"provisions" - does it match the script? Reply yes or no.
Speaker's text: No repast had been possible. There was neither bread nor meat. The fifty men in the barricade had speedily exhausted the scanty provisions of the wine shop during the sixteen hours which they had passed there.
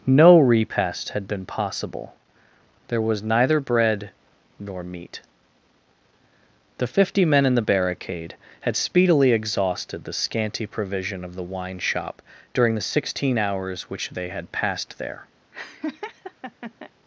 no